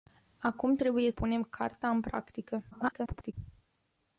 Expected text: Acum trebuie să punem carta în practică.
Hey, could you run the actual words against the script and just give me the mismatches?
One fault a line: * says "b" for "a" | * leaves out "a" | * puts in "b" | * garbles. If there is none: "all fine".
* leaves out "să"
* garbles